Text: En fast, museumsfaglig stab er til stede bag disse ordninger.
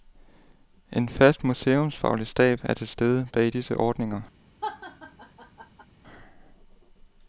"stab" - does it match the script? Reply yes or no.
yes